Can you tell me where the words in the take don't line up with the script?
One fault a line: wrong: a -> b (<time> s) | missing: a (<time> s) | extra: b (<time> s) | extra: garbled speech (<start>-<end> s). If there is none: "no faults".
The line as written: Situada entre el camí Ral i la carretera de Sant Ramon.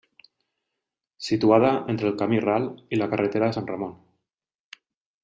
no faults